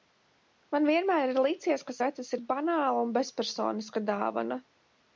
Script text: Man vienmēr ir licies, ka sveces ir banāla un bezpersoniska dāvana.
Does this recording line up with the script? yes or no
yes